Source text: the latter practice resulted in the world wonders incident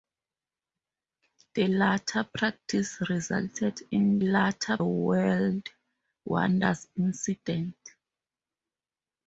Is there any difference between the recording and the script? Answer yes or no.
yes